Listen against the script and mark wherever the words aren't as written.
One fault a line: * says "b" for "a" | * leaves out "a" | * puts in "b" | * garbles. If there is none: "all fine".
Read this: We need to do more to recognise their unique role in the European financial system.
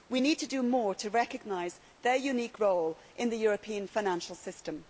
all fine